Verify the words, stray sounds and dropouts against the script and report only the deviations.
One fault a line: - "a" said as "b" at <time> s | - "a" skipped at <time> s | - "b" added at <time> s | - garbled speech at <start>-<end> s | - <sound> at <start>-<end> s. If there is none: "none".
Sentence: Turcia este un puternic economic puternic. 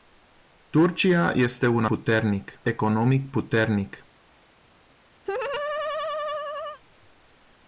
- laugh at 5.2-6.8 s